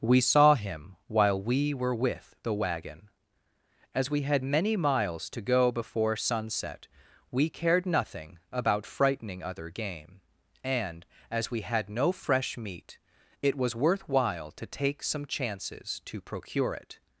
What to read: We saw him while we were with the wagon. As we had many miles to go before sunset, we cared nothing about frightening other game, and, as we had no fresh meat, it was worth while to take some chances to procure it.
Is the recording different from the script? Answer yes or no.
no